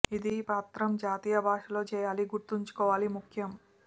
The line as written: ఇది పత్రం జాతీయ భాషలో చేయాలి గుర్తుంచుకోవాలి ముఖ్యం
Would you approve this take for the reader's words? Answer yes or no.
yes